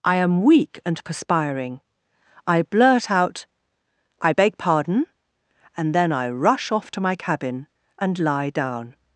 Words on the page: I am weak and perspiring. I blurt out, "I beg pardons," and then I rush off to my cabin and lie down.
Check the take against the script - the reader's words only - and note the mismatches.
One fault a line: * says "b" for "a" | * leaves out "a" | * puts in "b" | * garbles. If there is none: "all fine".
* says "pardon" for "pardons"